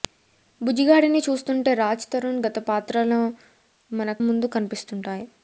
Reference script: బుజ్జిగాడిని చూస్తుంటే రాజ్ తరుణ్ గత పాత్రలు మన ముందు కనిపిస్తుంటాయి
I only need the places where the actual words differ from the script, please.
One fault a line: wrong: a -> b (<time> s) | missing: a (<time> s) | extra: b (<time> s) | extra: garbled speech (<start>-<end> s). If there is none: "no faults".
no faults